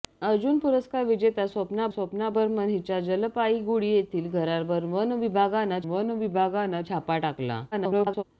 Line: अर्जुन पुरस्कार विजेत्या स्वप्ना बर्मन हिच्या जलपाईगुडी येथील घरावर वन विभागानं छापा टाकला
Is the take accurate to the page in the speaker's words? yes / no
no